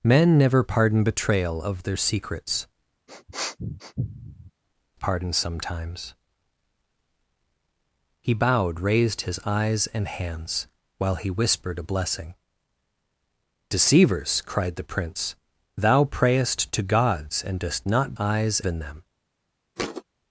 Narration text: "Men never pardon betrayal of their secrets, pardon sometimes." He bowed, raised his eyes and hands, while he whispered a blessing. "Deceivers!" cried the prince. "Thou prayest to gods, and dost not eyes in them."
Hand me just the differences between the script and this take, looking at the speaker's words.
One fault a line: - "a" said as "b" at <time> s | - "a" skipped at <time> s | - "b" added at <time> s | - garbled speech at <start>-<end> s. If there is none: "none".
none